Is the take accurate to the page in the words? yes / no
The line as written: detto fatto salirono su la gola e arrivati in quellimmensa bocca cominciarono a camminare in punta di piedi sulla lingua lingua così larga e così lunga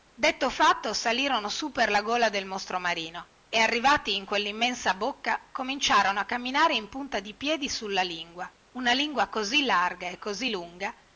no